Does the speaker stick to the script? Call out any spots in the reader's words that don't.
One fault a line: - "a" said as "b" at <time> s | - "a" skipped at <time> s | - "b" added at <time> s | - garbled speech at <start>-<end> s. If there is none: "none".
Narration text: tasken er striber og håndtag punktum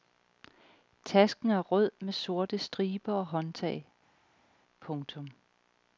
- "rød med sorte" added at 1.6 s